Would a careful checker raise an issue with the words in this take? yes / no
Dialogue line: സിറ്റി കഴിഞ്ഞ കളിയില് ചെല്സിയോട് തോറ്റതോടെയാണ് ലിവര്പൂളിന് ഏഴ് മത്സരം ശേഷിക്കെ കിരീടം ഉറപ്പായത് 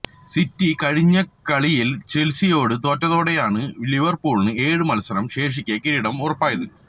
no